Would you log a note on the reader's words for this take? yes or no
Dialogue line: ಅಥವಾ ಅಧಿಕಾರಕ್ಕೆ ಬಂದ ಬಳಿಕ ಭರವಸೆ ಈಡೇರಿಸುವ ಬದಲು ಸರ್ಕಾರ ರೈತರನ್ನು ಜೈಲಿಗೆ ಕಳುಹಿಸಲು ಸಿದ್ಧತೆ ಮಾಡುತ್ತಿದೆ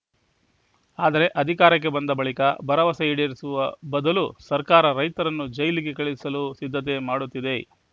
yes